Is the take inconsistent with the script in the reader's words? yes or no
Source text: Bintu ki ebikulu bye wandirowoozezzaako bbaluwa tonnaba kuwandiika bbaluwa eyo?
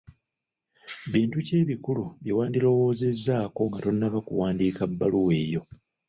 yes